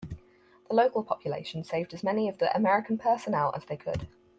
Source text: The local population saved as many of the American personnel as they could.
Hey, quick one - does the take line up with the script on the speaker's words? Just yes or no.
yes